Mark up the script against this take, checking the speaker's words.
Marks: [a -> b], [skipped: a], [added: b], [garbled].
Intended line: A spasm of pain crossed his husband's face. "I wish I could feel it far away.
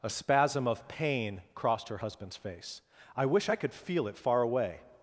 A spasm of pain crossed [his -> her] husband's face. "I wish I could feel it far away.